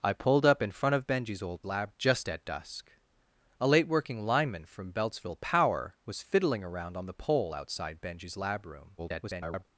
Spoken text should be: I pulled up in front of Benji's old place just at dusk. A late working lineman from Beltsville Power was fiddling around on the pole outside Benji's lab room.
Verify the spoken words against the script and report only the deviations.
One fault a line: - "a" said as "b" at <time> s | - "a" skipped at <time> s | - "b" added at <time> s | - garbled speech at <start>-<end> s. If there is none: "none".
- "place" said as "lab" at 1.6 s
- garbled speech at 9.0-9.6 s